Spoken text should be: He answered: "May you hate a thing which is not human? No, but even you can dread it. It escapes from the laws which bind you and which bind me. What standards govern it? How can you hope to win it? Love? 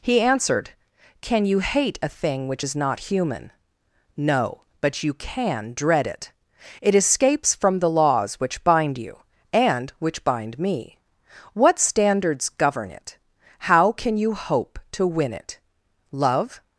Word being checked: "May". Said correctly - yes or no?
no